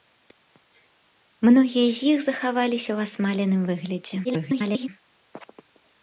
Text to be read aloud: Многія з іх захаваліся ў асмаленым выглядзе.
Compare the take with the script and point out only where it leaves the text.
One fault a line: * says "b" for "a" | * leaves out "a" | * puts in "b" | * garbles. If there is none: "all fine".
* garbles